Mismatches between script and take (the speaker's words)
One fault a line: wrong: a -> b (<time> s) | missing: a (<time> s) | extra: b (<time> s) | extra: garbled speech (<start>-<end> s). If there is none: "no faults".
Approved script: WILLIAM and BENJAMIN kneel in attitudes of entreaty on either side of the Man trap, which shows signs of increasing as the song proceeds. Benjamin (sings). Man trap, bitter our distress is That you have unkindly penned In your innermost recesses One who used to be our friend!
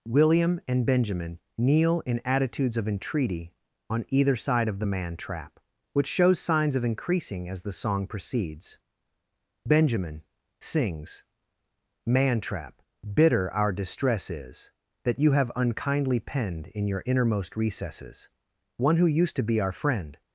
no faults